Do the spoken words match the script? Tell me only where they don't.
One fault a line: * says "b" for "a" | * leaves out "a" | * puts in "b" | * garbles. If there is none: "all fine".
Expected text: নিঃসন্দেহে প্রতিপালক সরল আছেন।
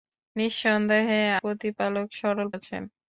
all fine